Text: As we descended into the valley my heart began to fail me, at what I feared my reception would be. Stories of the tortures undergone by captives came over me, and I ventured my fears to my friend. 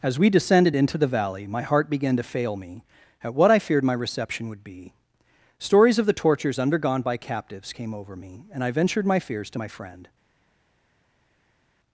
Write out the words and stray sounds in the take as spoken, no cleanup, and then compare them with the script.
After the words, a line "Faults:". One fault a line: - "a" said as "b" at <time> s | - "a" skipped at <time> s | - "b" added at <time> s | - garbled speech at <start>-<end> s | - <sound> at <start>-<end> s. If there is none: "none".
As we descended into the valley my heart began to fail me, at what I feared my reception would be. Stories of the tortures undergone by captives came over me, and I ventured my fears to my friend.
Faults:
none